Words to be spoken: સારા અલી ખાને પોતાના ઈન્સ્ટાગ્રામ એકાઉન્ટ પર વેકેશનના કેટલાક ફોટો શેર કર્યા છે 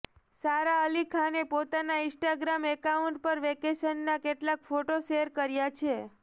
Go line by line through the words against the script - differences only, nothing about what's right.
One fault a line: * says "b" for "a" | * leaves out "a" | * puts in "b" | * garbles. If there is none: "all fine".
all fine